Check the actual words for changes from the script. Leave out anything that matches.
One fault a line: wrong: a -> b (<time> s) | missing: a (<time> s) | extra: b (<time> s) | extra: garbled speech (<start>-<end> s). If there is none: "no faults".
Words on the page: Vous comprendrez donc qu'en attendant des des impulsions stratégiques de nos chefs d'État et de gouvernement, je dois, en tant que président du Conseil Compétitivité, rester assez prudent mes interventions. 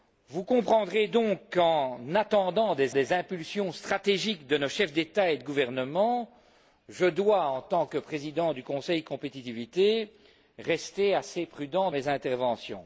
no faults